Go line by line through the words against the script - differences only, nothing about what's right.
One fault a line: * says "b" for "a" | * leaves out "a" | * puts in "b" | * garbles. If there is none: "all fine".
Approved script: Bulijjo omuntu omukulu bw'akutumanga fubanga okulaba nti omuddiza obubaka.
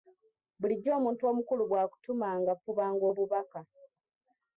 * leaves out "okulaba nti omuddiza"